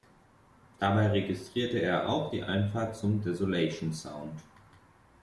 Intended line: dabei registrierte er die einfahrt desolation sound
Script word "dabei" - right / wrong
right